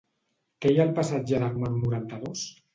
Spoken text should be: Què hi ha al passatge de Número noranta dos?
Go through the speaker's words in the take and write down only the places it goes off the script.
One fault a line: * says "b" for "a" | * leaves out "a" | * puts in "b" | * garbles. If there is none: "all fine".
all fine